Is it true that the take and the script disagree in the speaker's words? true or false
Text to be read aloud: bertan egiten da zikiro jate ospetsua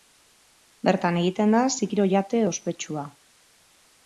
false